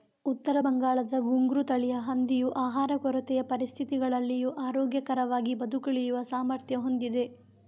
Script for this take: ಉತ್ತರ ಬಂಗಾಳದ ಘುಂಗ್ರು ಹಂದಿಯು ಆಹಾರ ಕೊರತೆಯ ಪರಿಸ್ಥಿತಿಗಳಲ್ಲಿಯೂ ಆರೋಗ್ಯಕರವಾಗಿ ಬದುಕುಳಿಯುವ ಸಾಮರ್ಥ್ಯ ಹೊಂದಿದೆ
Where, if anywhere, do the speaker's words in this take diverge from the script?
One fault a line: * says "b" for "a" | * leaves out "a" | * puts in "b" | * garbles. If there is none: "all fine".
* puts in "ತಳಿಯ"